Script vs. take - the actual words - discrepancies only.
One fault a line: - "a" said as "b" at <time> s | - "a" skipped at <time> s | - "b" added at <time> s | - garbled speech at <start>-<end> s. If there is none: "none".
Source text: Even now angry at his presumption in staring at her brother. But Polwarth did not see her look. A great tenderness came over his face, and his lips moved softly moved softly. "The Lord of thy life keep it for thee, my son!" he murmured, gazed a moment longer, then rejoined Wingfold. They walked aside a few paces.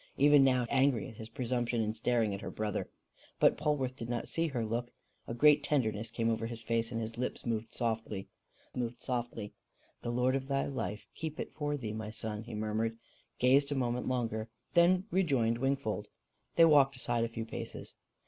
none